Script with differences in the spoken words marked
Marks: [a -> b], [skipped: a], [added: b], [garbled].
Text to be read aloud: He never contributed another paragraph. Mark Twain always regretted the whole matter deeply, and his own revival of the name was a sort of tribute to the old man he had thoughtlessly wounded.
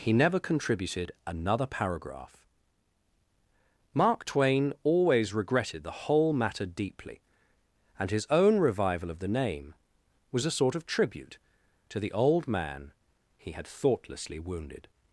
He never contributed another paragraph. Mark Twain always regretted the whole matter deeply, and his own revival of the name was a sort of tribute to the old man he had thoughtlessly wounded.